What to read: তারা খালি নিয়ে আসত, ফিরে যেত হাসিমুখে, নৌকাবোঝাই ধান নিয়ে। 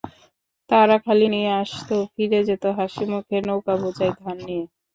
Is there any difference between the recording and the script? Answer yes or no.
no